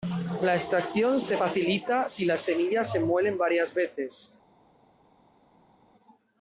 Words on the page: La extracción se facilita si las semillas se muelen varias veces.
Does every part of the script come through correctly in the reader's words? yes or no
yes